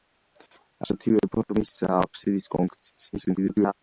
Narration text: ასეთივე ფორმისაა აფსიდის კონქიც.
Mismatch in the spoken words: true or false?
true